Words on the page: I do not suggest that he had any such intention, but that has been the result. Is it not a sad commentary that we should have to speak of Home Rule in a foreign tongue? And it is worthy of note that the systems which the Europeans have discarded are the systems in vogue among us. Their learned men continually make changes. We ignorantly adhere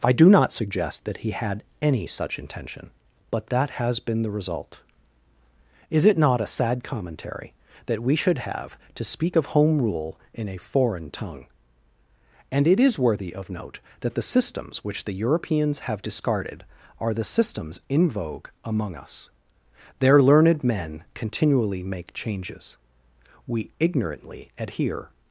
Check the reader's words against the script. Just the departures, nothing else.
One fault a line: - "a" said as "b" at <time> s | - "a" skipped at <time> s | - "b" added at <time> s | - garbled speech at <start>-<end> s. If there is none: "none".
none